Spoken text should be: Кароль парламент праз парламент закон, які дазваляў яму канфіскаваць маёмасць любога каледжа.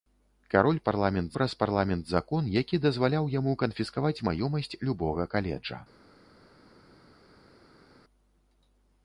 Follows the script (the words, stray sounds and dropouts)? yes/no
yes